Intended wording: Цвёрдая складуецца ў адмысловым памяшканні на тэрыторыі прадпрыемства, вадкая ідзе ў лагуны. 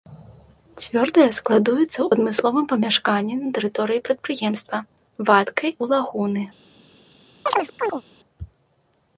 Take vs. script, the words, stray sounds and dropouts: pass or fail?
fail